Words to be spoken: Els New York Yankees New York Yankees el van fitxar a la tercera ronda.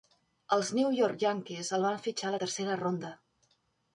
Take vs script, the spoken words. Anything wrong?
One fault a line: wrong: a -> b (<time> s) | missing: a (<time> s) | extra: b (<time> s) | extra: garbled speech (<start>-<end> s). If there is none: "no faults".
missing: New York Yankees (1.7 s)